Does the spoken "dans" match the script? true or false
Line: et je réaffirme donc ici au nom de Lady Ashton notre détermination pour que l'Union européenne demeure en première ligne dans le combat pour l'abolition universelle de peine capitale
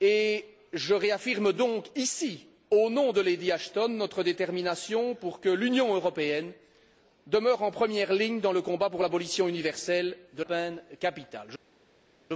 true